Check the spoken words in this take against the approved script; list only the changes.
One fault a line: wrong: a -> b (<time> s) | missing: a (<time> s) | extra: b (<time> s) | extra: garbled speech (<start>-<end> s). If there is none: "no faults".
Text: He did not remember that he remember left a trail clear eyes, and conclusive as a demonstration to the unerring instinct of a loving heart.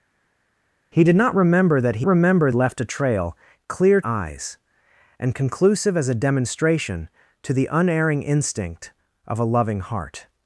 no faults